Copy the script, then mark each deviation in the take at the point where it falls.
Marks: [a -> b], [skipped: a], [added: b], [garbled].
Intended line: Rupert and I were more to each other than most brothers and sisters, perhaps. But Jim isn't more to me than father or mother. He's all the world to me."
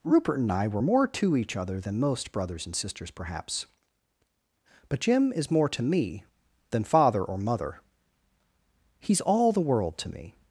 Rupert and I were more to each other than most brothers and sisters, perhaps. But Jim [isn't -> is] more to me than father or mother. He's all the world to me."